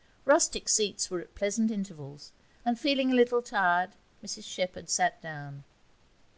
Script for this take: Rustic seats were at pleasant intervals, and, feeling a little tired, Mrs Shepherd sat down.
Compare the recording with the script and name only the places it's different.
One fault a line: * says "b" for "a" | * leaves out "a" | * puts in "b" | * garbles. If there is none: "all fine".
all fine